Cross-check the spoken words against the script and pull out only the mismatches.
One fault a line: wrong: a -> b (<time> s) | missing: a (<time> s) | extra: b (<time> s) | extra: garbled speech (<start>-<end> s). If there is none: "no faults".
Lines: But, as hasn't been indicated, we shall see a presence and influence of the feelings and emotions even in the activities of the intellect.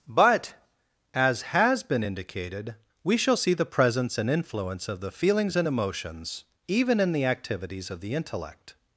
wrong: hasn't -> has (1.4 s)
wrong: a -> the (3.5 s)